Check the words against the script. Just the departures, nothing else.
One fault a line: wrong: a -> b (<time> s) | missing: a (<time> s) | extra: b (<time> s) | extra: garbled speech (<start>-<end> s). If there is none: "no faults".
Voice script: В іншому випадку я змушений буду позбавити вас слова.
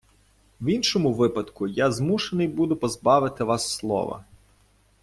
no faults